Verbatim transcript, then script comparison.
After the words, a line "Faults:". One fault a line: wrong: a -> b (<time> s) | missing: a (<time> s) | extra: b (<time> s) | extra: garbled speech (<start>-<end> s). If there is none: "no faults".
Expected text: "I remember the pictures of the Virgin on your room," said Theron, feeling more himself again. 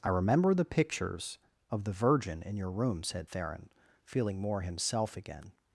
"I remember the pictures of the Virgin in your room," said Theron, feeling more himself again.
Faults:
wrong: on -> in (2.4 s)